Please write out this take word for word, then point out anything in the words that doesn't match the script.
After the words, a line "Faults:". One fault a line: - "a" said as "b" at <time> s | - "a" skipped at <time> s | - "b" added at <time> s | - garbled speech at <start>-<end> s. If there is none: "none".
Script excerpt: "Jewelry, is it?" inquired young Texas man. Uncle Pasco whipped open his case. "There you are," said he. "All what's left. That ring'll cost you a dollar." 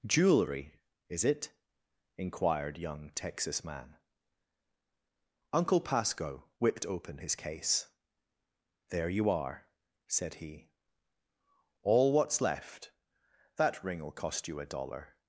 "Jewelry, is it?" inquired young Texas man. Uncle Pasco whipped open his case. "There you are," said he. "All what's left. That ring'll cost you a dollar."
Faults:
none